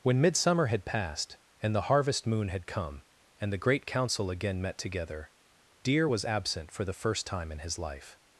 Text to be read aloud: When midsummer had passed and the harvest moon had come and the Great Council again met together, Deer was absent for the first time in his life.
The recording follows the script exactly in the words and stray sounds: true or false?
true